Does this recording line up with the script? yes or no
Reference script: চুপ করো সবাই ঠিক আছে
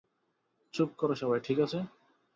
yes